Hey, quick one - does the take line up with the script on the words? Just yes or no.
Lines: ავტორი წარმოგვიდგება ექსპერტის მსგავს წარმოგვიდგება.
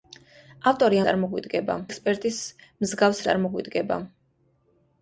yes